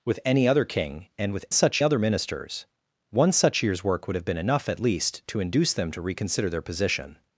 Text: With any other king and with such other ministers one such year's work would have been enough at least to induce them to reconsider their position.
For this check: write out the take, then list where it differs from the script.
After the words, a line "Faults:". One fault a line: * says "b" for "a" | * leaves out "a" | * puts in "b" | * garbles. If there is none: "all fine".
With any other king and with such other ministers one such year's work would have been enough at least to induce them to reconsider their position.
Faults:
all fine